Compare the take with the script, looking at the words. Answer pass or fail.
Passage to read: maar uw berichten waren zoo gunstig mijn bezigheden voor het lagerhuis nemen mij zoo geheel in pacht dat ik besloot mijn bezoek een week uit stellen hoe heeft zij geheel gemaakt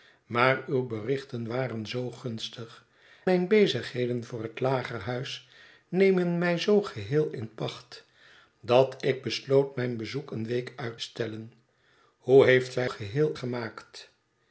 pass